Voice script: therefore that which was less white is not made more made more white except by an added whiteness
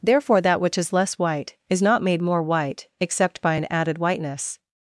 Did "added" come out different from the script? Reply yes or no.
no